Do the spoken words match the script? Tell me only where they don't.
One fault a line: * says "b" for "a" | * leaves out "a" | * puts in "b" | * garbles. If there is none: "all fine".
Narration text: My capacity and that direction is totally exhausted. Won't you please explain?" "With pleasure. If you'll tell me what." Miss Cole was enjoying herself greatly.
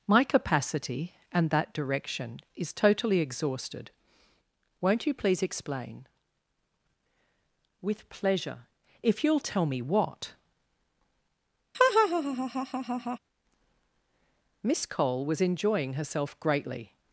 all fine